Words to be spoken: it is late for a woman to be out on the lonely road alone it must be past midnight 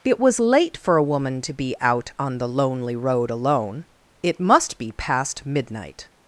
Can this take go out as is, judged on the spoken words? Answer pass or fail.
fail